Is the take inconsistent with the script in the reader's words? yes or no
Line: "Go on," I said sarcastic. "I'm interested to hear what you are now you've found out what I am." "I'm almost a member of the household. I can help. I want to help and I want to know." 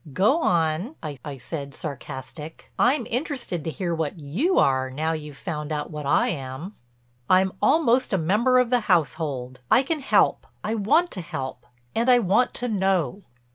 yes